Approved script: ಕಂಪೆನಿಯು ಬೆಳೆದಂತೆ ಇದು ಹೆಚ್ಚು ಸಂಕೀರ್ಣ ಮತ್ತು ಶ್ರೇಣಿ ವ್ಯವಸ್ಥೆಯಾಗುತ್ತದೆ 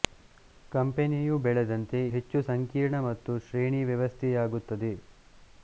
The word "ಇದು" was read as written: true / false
false